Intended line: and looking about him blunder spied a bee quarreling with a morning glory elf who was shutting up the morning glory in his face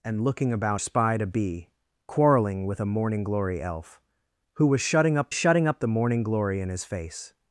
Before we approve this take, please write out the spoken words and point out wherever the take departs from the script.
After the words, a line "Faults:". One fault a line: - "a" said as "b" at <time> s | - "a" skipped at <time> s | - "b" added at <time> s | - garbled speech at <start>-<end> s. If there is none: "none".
and looking about spied a bee quarreling with a morning glory elf who was shutting up shutting up the morning glory in his face
Faults:
- "him blunder" skipped at 0.8 s
- "shutting up" added at 5.3 s